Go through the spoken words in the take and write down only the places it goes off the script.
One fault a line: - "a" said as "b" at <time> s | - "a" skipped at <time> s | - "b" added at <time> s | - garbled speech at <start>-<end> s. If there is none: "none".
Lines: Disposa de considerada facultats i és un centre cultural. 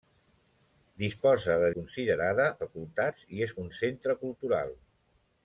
none